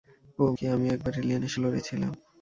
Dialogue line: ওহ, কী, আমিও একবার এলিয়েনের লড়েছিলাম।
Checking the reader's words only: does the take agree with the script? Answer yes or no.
yes